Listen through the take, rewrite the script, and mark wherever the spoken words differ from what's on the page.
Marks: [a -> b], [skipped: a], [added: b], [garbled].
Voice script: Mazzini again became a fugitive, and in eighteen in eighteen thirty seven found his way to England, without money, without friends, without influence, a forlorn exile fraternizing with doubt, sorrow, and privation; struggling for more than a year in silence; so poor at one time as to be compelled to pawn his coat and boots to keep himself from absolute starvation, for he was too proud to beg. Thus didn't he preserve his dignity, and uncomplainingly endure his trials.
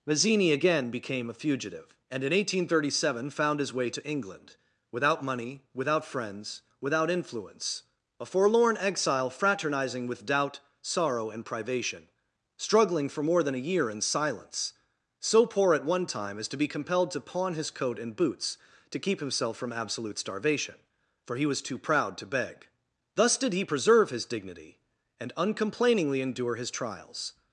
Mazzini again became a fugitive, and in eighteen [skipped: in eighteen] thirty seven found his way to England, without money, without friends, without influence, a forlorn exile fraternizing with doubt, sorrow, and privation; struggling for more than a year in silence; so poor at one time as to be compelled to pawn his coat and boots to keep himself from absolute starvation, for he was too proud to beg. Thus [didn't -> did] he preserve his dignity, and uncomplainingly endure his trials.